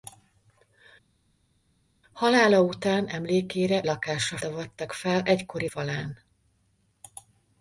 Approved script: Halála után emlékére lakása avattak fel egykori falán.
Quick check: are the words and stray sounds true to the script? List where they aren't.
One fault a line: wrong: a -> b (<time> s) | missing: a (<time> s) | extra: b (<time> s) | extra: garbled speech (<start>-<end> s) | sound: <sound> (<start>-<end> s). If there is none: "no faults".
no faults